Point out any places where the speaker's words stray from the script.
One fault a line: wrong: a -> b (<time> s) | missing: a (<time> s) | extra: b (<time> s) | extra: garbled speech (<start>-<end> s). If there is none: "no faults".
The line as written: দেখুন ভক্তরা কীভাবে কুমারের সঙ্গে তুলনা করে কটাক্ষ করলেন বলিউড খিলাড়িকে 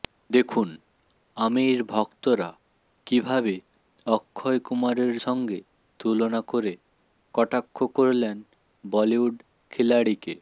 extra: আমির (1.4 s)
extra: অক্ষয় (4.1 s)